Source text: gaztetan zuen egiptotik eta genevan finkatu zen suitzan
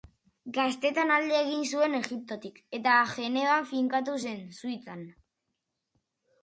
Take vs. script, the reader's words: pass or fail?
fail